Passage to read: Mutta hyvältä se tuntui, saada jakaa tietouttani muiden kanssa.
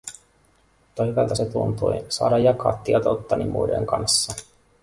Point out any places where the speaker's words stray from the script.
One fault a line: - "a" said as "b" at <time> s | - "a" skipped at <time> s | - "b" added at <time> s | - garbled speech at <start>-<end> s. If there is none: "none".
none